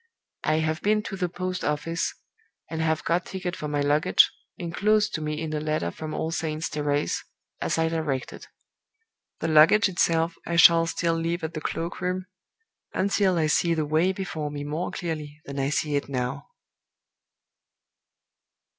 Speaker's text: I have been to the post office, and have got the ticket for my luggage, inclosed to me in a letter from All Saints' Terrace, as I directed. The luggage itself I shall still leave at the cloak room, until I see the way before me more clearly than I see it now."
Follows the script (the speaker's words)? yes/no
no